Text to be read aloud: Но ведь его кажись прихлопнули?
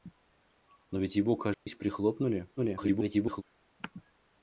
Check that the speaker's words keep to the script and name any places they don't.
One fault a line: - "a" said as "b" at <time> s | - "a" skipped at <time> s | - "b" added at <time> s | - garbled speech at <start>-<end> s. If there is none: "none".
- garbled speech at 2.6-3.4 s